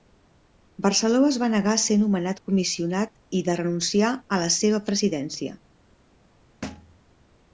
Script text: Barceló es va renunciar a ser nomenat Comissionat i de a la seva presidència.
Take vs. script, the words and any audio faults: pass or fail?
fail